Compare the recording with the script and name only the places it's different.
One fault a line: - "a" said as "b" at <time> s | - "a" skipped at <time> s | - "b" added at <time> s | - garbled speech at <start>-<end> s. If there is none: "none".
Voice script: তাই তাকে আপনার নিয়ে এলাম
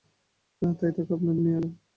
none